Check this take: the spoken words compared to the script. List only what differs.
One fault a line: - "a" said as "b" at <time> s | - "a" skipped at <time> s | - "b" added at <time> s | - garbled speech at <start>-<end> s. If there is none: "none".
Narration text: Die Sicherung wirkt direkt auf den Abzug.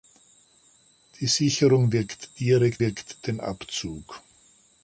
- "auf" said as "wirkt" at 2.8 s